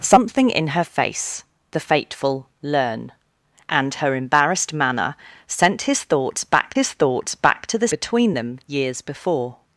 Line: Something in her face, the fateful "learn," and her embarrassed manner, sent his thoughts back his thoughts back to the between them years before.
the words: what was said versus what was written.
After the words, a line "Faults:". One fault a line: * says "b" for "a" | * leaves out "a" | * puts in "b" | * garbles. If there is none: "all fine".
Something in her face, the fateful "learn," and her embarrassed manner, sent his thoughts back his thoughts back to the between them years before.
Faults:
all fine